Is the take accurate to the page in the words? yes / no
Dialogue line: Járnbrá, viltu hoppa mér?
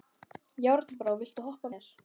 yes